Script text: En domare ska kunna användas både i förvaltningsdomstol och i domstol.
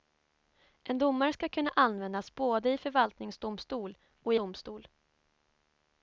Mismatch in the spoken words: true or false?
false